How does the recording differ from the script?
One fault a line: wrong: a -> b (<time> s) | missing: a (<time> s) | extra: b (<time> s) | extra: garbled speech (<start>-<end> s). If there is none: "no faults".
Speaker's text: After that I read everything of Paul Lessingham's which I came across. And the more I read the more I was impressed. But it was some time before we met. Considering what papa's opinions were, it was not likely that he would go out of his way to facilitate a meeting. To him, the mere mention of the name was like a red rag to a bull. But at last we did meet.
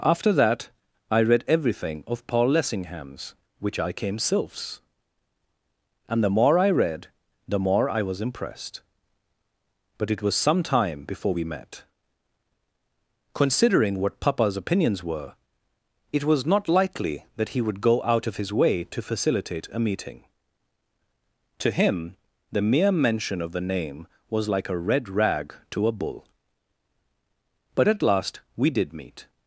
wrong: across -> sylphs (4.2 s)